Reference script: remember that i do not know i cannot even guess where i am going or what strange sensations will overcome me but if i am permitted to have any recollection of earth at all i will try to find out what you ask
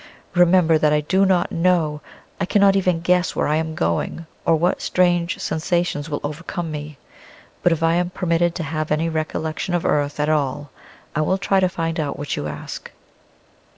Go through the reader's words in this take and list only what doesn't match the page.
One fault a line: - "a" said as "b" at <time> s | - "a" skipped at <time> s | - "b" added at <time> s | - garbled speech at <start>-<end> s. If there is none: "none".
none